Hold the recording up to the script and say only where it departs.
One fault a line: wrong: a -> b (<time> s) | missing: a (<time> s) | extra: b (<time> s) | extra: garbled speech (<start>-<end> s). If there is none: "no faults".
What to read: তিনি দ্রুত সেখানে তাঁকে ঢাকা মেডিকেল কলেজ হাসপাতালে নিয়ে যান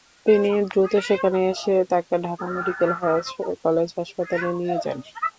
extra: এসে (1.5 s)